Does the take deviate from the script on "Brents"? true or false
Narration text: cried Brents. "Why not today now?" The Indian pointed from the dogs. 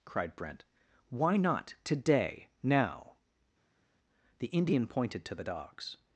true